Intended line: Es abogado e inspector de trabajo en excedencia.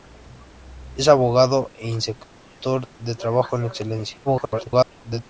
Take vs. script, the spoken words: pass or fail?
fail